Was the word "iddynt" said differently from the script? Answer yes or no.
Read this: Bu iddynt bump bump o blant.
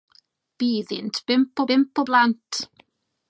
no